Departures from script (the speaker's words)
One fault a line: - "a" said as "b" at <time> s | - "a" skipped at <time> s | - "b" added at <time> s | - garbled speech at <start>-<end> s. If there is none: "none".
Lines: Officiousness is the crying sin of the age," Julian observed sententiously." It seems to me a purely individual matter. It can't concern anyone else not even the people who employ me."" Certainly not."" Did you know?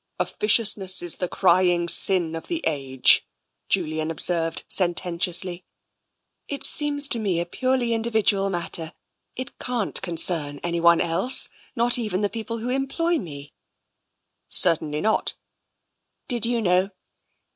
none